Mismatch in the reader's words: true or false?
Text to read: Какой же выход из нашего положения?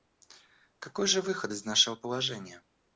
false